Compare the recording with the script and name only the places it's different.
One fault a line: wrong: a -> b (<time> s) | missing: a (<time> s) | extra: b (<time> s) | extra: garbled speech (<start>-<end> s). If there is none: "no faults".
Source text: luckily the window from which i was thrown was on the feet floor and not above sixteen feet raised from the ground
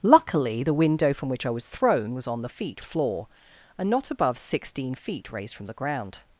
no faults